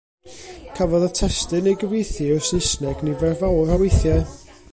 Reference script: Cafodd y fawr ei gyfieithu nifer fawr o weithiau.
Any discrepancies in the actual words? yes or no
yes